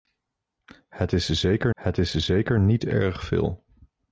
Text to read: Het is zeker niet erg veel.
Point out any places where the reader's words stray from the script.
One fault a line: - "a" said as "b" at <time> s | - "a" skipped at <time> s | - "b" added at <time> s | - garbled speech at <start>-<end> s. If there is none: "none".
- "het is zeker" added at 1.7 s